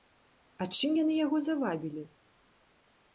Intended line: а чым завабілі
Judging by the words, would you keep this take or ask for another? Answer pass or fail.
fail